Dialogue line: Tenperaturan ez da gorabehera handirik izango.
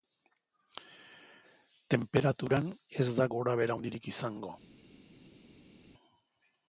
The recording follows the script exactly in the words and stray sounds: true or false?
true